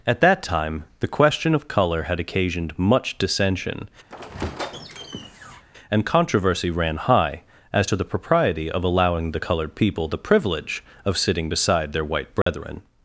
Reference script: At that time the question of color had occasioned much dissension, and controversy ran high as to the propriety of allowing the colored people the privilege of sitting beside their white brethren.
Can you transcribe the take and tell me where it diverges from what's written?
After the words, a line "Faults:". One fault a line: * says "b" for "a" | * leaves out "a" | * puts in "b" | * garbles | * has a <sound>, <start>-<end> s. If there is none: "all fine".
At that time the question of color had occasioned much dissension, and controversy ran high as to the propriety of allowing the colored people the privilege of sitting beside their white brethren.
Faults:
* has a squeak, 4.1-5.6 s
* has a dropout, 12.4-12.5 s